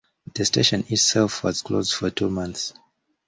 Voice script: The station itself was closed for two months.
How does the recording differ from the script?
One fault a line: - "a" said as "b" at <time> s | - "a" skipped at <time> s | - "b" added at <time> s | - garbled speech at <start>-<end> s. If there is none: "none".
none